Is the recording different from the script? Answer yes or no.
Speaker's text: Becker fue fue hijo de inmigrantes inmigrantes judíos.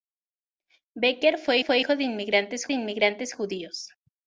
no